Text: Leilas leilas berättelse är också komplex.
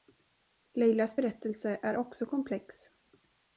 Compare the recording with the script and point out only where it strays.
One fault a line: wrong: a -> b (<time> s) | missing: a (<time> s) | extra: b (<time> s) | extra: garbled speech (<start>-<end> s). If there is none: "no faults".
missing: leilas (1.2 s)